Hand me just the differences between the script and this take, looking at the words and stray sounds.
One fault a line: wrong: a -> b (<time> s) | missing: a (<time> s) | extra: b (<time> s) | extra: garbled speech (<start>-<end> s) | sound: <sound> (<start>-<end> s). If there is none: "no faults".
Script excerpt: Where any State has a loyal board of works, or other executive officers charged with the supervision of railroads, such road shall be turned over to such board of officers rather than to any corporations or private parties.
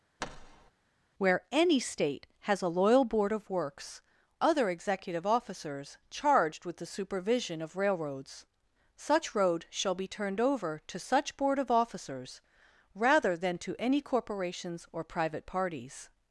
sound: thud (0.2-0.7 s)
missing: or (4.0 s)